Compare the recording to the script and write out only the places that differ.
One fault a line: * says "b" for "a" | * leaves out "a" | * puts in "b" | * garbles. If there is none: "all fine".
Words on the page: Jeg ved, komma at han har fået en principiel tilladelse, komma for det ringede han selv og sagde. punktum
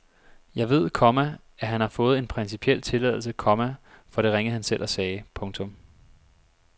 all fine